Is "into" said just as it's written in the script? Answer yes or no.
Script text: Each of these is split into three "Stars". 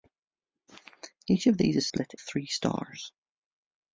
no